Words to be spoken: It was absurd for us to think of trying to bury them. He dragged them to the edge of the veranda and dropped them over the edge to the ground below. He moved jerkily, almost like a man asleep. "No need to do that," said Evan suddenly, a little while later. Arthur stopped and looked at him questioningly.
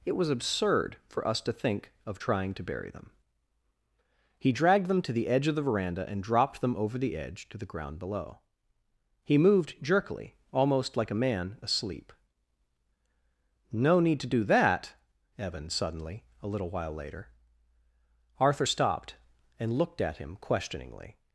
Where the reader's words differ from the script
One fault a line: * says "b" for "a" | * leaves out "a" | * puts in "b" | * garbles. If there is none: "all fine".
* leaves out "said"